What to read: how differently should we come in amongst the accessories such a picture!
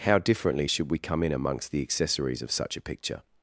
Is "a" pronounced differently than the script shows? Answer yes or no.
no